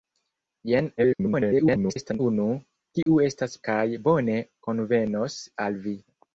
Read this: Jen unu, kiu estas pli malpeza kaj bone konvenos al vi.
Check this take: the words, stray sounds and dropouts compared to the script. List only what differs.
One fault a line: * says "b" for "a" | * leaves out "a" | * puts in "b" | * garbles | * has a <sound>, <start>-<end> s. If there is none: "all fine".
* garbles
* has a dropout, 3.0-3.1 s
* leaves out "pli malpeza"